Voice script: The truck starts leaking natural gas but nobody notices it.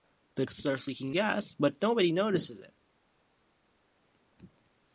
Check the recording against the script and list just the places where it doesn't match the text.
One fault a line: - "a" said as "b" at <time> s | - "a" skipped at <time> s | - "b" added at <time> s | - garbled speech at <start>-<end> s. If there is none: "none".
- "truck" skipped at 0.5 s
- "natural" skipped at 1.1 s